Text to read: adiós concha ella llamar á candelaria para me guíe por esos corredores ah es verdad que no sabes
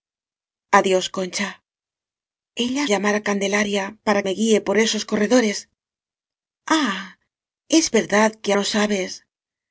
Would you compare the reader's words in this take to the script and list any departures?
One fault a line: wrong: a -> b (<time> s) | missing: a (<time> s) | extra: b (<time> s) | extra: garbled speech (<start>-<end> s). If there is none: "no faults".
no faults